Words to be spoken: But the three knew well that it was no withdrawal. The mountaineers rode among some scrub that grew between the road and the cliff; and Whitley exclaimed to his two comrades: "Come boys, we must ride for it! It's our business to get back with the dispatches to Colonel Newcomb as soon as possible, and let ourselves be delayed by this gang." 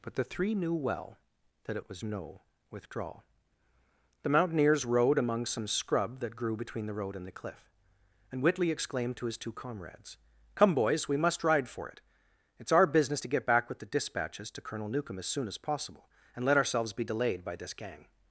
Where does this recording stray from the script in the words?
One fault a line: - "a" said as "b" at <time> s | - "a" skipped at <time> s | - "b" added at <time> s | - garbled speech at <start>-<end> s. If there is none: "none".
none